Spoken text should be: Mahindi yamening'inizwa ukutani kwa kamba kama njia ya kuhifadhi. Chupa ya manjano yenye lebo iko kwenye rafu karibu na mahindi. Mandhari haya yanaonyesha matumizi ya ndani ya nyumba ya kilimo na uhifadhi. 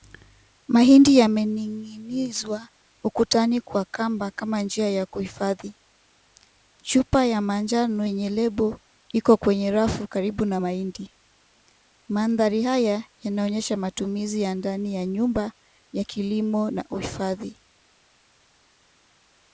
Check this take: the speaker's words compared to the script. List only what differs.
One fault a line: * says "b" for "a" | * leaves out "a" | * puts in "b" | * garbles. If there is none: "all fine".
all fine